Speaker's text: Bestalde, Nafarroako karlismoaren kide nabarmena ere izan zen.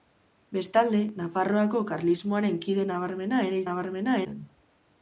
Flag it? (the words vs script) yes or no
yes